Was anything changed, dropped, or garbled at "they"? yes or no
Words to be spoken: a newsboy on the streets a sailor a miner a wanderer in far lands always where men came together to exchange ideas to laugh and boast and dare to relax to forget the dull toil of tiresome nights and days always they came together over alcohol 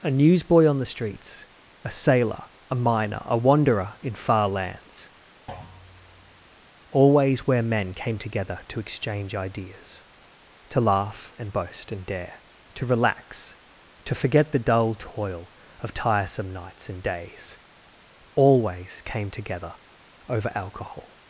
yes